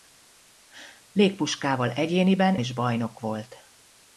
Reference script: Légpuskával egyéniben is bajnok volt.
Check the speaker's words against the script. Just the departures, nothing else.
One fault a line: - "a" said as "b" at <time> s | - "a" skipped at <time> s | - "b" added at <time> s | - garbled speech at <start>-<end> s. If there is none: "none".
none